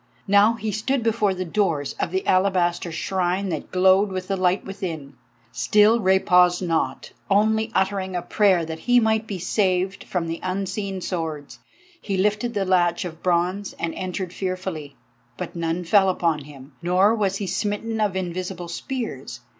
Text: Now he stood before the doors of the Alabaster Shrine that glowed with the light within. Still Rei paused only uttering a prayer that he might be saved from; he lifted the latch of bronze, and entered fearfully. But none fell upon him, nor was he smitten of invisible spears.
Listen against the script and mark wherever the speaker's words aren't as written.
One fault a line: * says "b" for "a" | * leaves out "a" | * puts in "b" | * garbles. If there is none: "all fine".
* puts in "not"
* puts in "the unseen swords"